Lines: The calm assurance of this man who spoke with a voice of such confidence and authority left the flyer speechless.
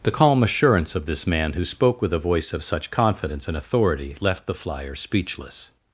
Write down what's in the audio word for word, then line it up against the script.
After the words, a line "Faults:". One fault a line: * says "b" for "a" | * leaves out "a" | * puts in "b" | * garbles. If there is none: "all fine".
The calm assurance of this man who spoke with a voice of such confidence and authority left the flyer speechless.
Faults:
all fine